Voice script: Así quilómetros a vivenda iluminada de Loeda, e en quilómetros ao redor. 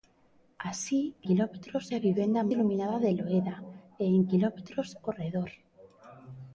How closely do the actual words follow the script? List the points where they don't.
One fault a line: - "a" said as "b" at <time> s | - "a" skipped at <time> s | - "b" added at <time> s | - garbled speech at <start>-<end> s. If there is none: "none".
none